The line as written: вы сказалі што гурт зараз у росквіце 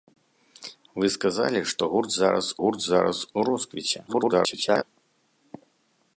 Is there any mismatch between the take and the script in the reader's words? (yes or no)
yes